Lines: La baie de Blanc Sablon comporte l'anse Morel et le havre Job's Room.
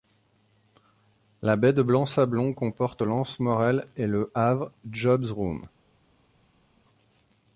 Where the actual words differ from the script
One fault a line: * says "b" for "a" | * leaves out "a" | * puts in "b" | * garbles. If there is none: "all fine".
all fine